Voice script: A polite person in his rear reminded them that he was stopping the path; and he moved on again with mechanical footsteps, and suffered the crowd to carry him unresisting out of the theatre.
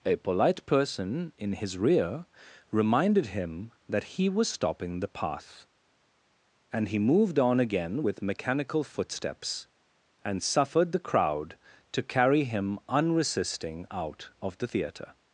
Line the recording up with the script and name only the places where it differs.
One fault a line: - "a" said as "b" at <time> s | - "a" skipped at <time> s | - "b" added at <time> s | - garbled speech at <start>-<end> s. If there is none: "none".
- "them" said as "him" at 3.3 s